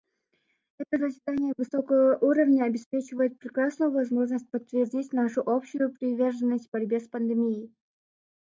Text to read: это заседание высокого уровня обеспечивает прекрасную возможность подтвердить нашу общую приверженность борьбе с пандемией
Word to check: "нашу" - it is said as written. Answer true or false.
true